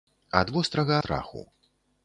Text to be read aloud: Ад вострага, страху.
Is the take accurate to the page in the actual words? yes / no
yes